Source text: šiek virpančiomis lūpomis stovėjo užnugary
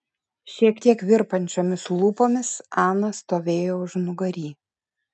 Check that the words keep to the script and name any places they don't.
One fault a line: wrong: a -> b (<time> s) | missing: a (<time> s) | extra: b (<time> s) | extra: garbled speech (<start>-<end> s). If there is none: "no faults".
extra: tiek (0.9 s)
extra: ana (2.9 s)